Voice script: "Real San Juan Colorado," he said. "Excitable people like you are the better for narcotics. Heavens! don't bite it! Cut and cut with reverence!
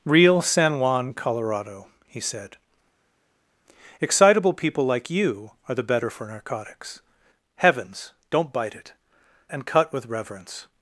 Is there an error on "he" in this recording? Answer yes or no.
no